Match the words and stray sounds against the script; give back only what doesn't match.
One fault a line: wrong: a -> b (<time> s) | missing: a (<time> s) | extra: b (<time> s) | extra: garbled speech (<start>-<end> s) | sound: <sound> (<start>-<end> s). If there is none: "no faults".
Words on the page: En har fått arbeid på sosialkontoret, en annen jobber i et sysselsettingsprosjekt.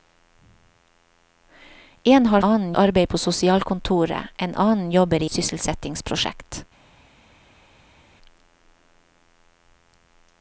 wrong: fått -> annen (2.4 s)
missing: et (5.3 s)